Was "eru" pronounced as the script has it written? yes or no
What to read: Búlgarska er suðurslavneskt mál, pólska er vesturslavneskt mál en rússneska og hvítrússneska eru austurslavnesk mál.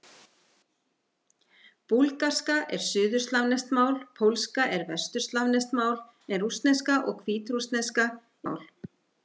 no